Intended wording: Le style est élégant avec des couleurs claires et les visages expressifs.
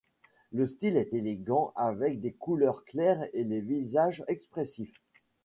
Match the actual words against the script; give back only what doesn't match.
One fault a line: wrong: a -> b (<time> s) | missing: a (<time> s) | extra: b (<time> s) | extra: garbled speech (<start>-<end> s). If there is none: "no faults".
no faults